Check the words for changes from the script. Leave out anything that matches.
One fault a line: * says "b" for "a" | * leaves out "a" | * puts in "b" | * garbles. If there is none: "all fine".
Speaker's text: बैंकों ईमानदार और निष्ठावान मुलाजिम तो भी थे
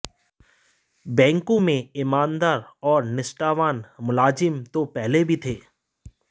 * puts in "में"
* puts in "पहले"